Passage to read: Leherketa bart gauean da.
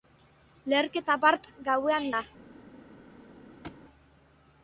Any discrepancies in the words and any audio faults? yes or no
yes